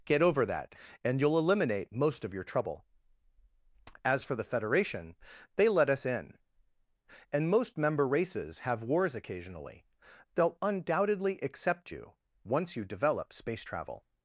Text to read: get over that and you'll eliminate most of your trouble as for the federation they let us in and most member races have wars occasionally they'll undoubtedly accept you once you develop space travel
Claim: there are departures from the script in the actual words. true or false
false